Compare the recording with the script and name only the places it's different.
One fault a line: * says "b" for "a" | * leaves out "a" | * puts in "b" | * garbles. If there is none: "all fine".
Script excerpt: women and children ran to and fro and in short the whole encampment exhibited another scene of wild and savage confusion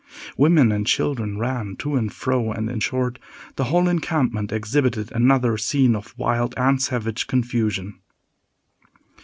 all fine